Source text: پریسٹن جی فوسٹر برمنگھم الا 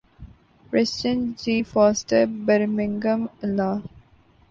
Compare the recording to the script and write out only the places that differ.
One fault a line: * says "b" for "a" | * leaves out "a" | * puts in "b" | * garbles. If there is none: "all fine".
all fine